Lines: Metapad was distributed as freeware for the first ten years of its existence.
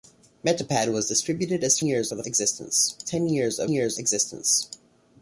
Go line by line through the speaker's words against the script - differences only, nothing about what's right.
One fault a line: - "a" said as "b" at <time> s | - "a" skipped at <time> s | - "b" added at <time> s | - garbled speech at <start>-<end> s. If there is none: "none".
- "freeware" said as "years" at 1.8 s
- "first" said as "existence" at 2.3 s
- "its" said as "years" at 3.7 s